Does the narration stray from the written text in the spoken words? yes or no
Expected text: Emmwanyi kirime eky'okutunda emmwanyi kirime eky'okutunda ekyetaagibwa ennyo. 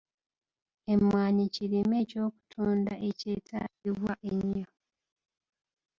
yes